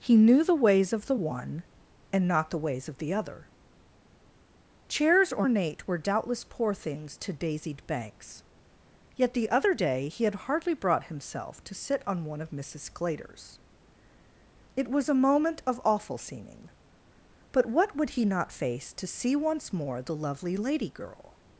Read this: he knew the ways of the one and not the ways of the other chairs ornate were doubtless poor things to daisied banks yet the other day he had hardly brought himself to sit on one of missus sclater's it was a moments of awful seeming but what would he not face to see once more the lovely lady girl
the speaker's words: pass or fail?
fail